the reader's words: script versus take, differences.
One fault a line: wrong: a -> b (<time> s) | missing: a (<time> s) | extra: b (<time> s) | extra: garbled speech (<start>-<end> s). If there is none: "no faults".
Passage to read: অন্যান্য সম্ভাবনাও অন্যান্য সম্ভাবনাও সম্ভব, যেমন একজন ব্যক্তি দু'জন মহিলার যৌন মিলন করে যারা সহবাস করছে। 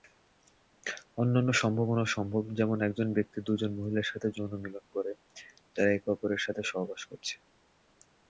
missing: অন্যান্য সম্ভাবনাও (2.1 s)
extra: সাথে (4.1 s)
extra: একে অপরের সাথে (5.9 s)